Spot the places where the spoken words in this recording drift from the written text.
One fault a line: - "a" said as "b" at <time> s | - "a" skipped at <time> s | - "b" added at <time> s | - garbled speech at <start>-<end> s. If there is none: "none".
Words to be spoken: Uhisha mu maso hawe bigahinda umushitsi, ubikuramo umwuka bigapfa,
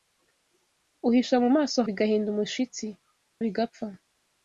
- "hawe" skipped at 1.8 s
- "ubikuramo umwuka" skipped at 2.9 s